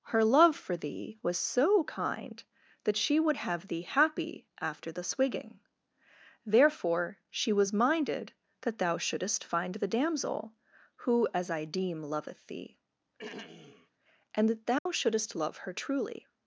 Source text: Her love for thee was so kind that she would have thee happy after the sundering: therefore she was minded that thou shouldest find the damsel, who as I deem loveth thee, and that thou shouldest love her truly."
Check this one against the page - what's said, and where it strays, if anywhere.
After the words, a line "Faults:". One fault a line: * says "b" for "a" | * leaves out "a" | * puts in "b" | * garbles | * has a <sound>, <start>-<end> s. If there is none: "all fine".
Her love for thee was so kind that she would have thee happy after the swigging: therefore she was minded that thou shouldest find the damsel, who as I deem loveth thee, and that thou shouldest love her truly."
Faults:
* says "swigging" for "sundering"
* has a throat clearing, 13.2-13.9 s
* has a dropout, 14.8-14.9 s